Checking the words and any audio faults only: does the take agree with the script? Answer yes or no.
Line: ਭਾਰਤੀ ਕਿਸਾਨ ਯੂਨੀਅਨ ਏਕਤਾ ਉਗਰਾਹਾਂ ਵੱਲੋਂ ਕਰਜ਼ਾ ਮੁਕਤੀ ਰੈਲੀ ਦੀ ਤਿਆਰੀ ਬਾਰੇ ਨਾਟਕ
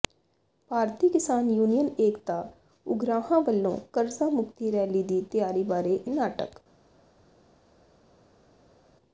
yes